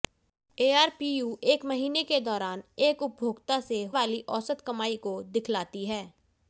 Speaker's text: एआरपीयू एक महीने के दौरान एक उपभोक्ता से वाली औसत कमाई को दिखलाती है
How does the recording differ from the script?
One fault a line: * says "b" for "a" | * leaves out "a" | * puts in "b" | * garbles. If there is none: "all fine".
all fine